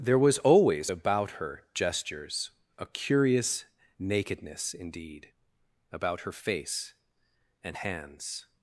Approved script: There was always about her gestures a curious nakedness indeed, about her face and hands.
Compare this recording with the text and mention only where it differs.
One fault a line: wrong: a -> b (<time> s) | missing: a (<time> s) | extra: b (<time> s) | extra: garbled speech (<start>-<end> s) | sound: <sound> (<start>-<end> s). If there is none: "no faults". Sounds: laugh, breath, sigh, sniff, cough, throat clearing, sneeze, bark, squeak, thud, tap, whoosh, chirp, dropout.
no faults